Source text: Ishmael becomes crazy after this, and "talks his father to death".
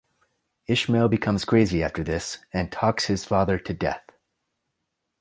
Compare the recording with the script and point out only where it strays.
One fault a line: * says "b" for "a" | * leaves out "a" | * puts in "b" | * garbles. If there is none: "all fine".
all fine